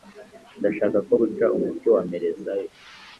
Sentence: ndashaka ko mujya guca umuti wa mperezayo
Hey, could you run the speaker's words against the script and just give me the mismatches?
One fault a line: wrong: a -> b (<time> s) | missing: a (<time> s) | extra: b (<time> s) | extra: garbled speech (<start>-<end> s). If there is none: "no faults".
missing: mujya (1.1 s)